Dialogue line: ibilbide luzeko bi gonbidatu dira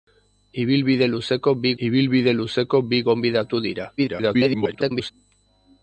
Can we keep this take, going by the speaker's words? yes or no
no